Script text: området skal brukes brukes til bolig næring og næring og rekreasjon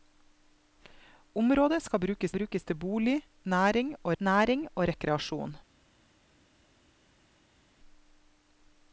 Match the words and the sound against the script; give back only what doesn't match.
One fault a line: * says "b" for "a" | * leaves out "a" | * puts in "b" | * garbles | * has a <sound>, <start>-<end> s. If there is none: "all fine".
all fine